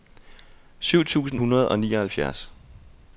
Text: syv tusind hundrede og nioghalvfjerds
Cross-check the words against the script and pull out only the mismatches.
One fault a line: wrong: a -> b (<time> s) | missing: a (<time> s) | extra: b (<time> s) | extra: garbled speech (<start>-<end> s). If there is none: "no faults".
no faults